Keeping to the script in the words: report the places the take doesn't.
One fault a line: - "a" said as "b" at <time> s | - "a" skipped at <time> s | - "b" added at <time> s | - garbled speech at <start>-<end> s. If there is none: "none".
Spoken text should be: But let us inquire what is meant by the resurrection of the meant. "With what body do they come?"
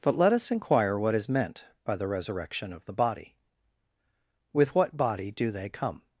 - "meant" said as "body" at 2.9 s